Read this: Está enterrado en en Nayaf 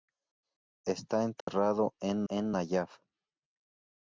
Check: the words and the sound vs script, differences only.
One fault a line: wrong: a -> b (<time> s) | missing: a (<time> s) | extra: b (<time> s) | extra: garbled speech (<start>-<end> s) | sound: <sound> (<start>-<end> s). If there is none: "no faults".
sound: dropout (1.4-1.5 s)